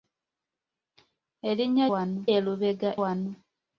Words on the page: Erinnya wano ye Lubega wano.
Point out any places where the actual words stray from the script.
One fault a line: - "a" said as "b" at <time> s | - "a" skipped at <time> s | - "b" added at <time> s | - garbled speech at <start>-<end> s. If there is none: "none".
none